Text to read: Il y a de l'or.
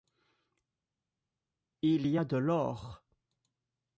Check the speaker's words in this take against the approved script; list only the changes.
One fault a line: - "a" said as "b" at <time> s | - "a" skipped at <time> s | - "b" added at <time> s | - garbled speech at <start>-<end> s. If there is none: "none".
none